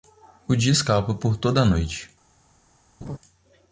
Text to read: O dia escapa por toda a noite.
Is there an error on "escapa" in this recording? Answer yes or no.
no